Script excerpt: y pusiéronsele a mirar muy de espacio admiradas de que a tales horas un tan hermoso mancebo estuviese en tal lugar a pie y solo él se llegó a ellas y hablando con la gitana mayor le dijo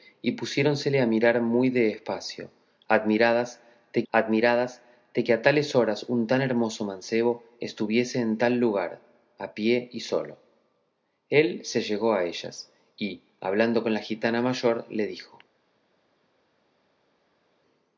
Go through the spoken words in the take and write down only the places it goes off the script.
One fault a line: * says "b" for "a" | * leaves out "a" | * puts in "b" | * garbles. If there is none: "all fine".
* puts in "admiradas de"